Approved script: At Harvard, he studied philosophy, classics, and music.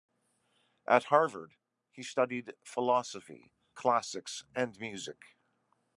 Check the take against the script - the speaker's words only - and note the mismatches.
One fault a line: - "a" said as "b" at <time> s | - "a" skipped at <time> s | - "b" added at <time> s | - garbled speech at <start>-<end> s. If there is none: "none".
none